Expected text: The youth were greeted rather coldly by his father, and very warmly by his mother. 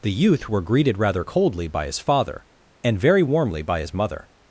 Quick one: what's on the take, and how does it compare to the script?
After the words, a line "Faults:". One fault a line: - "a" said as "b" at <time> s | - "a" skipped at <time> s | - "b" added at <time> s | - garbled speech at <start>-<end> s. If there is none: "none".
The youth were greeted rather coldly by his father, and very warmly by his mother.
Faults:
none